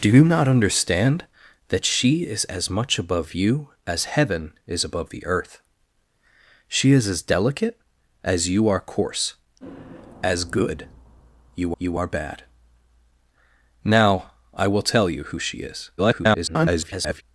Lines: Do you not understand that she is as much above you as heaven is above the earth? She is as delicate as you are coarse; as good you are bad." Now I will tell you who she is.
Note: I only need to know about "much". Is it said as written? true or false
true